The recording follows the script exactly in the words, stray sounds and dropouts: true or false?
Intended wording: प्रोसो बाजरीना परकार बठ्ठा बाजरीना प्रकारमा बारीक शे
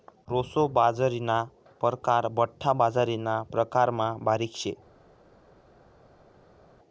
true